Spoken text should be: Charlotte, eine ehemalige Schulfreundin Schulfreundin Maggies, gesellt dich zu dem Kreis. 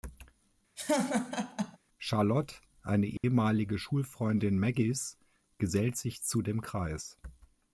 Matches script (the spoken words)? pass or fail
fail